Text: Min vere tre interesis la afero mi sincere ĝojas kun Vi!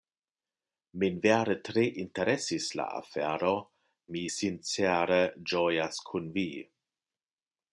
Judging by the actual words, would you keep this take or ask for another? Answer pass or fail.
pass